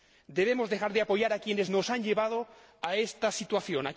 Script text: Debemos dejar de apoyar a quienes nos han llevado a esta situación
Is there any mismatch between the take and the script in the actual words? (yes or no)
no